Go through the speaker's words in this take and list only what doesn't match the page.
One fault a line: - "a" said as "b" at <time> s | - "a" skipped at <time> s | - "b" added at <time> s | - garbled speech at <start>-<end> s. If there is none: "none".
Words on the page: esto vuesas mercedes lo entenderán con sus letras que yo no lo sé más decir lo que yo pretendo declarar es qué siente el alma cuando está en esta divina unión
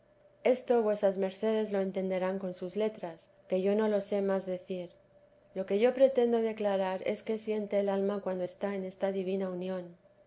none